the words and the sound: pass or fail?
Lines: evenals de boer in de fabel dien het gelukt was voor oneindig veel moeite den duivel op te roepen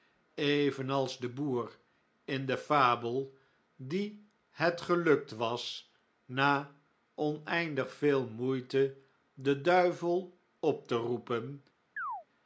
fail